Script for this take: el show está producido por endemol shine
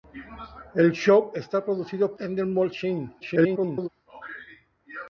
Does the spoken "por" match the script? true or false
false